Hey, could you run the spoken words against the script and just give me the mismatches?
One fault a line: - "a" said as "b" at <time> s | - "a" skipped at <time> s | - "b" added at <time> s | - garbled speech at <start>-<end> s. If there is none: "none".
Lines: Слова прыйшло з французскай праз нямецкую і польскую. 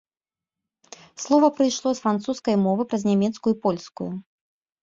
- "мовы" added at 2.6 s